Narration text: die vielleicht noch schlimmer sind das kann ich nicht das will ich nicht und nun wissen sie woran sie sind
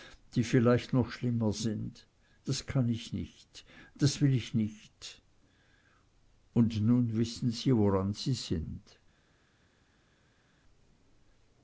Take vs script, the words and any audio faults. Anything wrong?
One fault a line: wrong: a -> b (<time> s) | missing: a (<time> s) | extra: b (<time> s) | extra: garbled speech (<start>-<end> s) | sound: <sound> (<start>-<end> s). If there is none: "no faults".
no faults